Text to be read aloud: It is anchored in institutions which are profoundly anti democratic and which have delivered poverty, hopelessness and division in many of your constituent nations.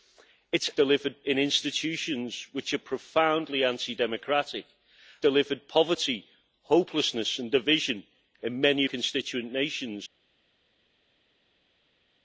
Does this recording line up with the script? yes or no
no